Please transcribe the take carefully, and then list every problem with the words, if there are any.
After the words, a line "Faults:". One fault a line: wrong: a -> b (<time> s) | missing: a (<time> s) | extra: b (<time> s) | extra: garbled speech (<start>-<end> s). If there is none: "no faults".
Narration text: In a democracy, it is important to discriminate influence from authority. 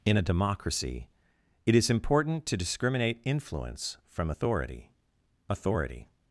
In a democracy, it is important to discriminate influence from authority authority.
Faults:
extra: authority (5.5 s)